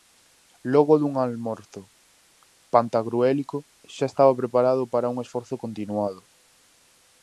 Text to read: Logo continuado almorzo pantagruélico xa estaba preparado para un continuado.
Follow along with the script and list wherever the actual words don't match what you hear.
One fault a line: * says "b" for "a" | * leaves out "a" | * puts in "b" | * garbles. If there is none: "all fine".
* says "dun" for "continuado"
* puts in "esforzo"